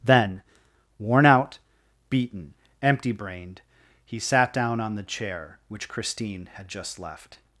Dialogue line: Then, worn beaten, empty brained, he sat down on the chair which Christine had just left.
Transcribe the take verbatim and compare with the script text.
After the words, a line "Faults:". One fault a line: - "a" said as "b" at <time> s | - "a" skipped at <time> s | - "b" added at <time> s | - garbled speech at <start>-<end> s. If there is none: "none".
Then, worn out, beaten, empty brained, he sat down on the chair which Christine had just left.
Faults:
- "out" added at 1.2 s